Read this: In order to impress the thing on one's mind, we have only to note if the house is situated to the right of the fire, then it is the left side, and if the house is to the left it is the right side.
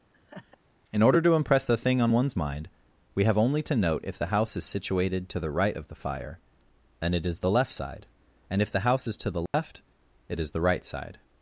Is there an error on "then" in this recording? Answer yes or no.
yes